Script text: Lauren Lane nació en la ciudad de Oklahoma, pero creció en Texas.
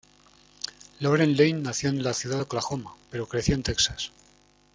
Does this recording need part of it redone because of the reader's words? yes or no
no